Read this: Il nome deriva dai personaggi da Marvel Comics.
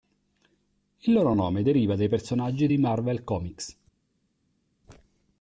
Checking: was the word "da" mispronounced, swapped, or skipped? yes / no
yes